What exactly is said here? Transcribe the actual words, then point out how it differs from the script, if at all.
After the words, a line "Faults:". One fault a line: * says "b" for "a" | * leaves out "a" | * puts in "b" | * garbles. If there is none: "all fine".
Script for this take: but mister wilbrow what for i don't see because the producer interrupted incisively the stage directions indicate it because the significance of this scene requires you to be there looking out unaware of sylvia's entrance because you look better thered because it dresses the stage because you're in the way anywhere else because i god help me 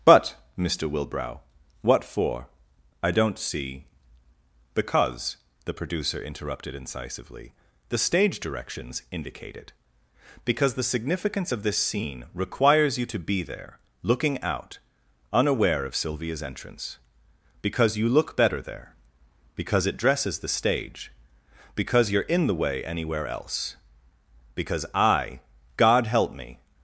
but mister wilbrow what for i don't see because the producer interrupted incisively the stage directions indicate it because the significance of this scene requires you to be there looking out unaware of sylvia's entrance because you look better there because it dresses the stage because you're in the way anywhere else because i god help me
Faults:
* says "there" for "thered"